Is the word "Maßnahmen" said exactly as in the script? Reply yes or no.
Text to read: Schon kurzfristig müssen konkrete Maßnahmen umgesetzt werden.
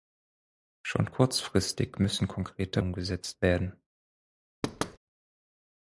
no